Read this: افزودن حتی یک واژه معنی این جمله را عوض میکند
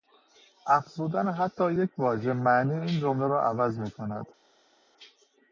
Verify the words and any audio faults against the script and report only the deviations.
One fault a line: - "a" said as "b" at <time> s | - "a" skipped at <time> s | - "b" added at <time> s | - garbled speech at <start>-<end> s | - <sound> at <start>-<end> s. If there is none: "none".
none